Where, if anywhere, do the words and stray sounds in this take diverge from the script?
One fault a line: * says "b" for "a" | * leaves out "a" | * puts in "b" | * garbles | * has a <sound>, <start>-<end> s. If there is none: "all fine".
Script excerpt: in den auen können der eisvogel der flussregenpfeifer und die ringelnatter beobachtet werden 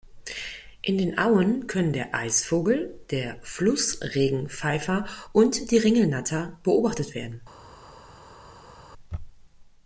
all fine